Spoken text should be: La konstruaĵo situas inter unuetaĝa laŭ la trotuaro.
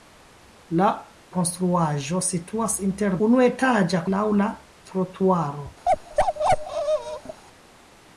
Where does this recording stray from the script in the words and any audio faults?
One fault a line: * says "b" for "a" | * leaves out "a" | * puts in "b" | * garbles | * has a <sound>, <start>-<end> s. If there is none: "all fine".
* has a bark, 5.9-7.4 s